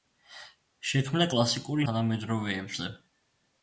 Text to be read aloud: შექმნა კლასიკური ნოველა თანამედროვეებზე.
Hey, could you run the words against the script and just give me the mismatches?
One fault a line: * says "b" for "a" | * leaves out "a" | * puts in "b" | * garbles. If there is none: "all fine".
* leaves out "ნოველა"